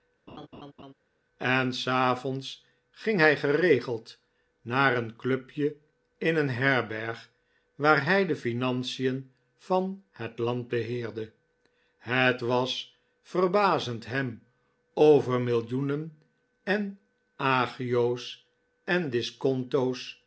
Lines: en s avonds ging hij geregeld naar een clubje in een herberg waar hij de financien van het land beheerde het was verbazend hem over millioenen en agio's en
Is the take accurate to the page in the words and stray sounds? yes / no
no